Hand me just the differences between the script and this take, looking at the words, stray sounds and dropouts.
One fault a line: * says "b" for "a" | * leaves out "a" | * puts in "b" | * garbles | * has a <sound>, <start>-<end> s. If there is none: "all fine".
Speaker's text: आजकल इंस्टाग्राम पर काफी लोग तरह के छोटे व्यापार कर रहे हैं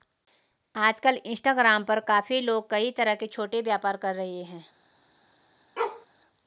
* puts in "कई"
* has a bark, 5.8-6.1 s